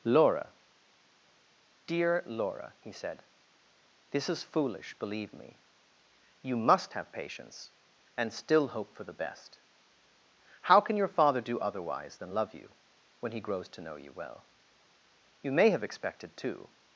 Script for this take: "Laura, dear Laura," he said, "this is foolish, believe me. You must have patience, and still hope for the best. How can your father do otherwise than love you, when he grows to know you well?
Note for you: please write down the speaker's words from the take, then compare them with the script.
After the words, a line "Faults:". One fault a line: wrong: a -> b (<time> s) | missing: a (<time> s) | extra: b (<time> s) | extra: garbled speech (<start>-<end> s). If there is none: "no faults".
"Laura, dear Laura," he said, "this is foolish, believe me. You must have patience, and still hope for the best. How can your father do otherwise than love you, when he grows to know you well? You may have expected too
Faults:
extra: You may have expected too (15.4 s)